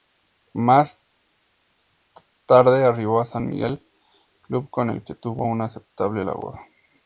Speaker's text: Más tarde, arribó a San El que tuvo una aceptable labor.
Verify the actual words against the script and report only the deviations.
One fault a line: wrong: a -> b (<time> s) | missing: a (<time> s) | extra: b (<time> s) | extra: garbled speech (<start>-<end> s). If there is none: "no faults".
extra: Miguel club con (3.5 s)